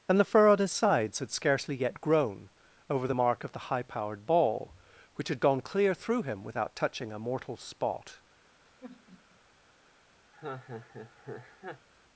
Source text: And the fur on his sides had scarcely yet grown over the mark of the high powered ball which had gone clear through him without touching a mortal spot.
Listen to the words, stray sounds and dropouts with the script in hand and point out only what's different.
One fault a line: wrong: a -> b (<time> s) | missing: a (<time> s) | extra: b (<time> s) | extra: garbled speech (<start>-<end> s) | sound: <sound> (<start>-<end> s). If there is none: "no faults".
sound: sigh (8.7-9.4 s)
sound: laugh (10.3-11.9 s)